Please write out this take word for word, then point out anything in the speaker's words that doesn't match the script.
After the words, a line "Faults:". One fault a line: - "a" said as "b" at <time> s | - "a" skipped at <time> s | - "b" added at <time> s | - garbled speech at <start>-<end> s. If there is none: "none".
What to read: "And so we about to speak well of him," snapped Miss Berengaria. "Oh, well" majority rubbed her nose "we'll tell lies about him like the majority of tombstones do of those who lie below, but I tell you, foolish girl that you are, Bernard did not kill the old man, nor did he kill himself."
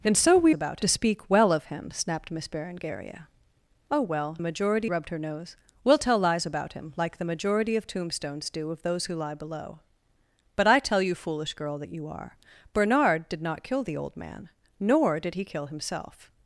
"And so we about to speak well of him," snapped Miss Berengaria. "Oh, well" majority rubbed her nose "we'll tell lies about him like the majority of tombstones do of those who lie below, but I tell you, foolish girl that you are, Bernard did not kill the old man, nor did he kill himself."
Faults:
none